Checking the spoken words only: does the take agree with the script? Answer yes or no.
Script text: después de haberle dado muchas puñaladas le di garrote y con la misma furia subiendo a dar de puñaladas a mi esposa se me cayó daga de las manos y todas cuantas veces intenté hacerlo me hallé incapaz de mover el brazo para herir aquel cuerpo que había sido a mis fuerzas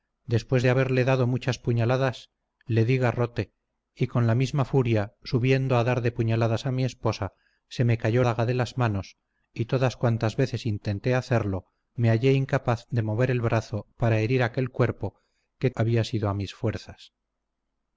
yes